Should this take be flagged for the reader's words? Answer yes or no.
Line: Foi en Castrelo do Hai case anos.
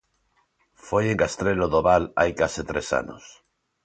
yes